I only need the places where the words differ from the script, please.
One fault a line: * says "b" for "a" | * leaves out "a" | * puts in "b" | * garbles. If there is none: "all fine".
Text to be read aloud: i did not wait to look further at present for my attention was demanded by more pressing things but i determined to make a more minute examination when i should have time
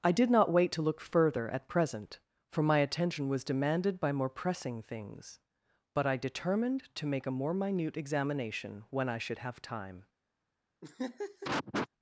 all fine